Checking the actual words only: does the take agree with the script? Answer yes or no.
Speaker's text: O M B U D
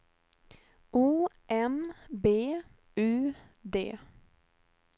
yes